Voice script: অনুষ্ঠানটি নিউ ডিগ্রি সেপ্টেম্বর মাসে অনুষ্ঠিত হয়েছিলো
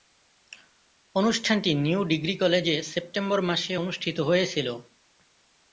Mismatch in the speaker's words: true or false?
true